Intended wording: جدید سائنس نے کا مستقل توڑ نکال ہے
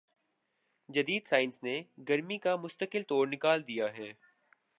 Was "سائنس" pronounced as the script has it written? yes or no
yes